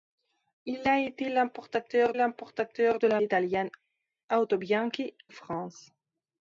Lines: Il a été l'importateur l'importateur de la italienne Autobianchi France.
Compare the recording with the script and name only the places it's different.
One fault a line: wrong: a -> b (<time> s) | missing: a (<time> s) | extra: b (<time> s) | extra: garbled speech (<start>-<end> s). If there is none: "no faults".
no faults